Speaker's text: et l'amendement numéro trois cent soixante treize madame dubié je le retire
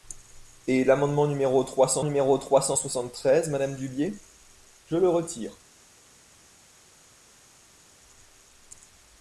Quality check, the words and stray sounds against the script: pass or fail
fail